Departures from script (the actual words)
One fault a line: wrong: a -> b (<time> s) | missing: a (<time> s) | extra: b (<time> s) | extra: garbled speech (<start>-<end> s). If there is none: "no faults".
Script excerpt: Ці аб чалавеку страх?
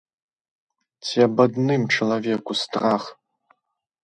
extra: адным (1.4 s)